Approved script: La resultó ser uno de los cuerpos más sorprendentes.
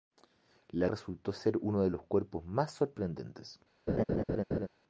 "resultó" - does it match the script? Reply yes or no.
yes